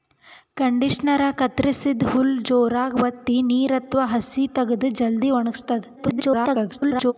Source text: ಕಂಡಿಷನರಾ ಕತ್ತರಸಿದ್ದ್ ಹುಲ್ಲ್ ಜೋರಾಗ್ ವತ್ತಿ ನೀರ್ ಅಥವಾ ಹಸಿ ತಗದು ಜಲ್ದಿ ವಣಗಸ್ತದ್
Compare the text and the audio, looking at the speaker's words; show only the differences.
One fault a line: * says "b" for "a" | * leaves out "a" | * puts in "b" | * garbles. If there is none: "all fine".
* garbles